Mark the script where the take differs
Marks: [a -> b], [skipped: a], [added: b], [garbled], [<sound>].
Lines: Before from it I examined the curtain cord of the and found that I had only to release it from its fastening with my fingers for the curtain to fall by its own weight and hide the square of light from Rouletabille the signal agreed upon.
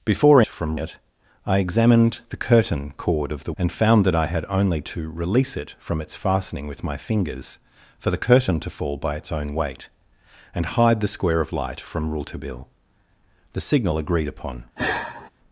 Before from it I examined the curtain cord of the and found that I had only to release it from its fastening with my fingers for the curtain to fall by its own weight and hide the square of light from Rouletabille the signal agreed upon. [sigh]